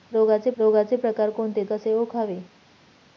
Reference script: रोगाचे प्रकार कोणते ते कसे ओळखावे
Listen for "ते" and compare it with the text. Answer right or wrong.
wrong